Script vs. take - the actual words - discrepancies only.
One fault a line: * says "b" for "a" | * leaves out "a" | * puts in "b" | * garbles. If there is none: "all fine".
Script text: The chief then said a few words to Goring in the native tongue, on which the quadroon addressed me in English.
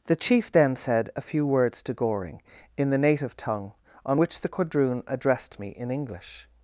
all fine